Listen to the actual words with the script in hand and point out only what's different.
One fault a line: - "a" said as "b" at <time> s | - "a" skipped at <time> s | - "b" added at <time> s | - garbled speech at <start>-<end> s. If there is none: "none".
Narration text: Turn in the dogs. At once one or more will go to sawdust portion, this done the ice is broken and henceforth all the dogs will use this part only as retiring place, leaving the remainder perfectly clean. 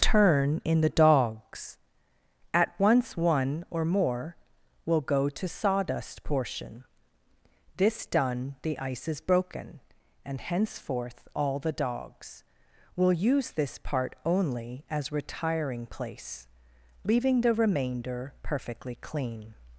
none